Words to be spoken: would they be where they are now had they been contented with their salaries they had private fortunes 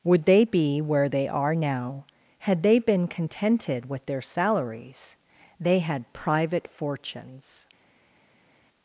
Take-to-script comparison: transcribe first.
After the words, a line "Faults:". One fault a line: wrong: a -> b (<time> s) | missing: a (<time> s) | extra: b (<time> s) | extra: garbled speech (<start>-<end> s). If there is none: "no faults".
would they be where they are now had they been contented with their salaries they had private fortunes
Faults:
no faults